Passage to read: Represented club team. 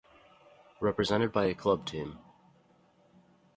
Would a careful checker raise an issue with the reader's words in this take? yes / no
yes